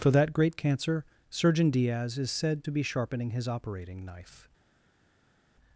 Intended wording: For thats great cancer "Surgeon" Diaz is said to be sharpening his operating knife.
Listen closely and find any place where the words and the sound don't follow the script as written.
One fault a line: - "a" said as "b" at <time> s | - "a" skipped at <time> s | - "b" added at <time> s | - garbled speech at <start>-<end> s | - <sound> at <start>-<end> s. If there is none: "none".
- "thats" said as "that" at 0.1 s